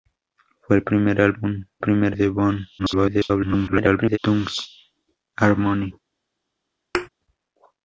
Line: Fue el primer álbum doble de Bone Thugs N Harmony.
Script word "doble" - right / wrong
wrong